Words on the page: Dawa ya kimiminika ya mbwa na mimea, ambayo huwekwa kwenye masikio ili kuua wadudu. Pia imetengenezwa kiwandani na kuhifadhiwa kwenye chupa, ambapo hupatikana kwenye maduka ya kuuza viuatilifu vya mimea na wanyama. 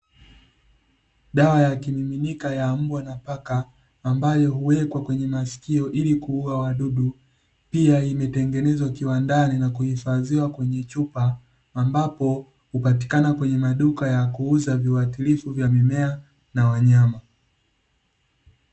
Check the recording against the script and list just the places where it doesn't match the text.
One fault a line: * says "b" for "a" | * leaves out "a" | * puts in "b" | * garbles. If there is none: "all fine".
* says "paka" for "mimea"